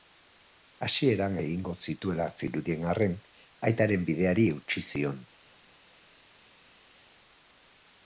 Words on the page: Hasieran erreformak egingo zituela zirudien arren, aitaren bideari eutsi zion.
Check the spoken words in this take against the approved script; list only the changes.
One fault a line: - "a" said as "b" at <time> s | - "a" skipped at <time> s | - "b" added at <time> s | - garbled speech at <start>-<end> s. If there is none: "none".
- "erreformak" skipped at 1.4 s